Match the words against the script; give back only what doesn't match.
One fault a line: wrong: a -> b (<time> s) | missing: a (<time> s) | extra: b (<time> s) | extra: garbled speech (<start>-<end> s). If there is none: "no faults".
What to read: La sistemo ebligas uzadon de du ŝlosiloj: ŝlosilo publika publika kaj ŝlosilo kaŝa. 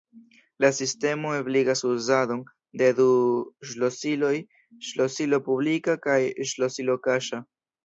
missing: publika (6.0 s)